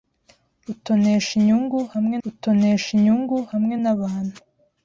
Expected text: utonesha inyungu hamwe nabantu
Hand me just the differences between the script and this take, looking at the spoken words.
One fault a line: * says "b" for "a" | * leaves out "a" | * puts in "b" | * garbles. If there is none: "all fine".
* puts in "utonesha inyungu hamwe"